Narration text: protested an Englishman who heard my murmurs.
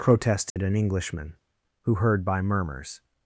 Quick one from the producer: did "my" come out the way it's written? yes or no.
no